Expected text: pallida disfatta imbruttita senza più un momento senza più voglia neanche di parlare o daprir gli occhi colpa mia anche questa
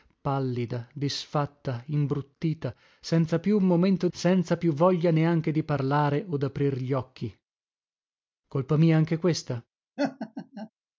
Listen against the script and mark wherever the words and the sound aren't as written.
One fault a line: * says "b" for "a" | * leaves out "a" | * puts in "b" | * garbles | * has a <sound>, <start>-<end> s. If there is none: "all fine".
* has a laugh, 10.0-10.7 s